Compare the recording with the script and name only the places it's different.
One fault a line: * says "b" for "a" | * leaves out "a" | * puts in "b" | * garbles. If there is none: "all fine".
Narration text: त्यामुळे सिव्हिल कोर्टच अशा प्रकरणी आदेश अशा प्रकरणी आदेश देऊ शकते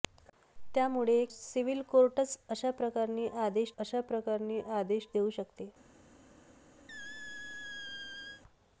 all fine